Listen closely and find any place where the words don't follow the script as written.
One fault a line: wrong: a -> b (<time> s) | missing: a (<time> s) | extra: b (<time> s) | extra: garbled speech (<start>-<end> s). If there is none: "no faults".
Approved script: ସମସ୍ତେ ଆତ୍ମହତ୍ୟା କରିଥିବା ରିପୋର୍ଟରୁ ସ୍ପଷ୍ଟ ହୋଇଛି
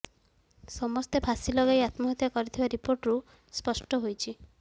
extra: ଫାଶୀ ଲଗାଇ (1.2 s)